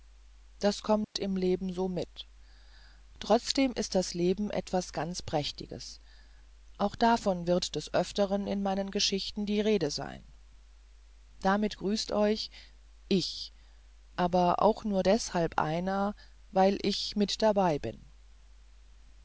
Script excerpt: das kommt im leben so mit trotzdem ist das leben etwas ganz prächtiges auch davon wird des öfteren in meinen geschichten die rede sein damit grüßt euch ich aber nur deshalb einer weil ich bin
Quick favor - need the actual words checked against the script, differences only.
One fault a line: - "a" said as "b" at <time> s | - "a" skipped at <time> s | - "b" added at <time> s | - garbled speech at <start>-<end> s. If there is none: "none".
- "auch" added at 14.6 s
- "mit dabei" added at 17.1 s